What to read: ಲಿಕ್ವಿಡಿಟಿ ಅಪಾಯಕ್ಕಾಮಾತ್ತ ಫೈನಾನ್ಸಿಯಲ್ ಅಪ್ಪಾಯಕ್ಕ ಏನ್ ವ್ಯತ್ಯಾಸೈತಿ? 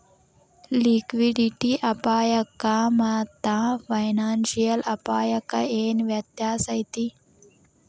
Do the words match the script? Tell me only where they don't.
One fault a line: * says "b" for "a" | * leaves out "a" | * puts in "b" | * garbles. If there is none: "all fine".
all fine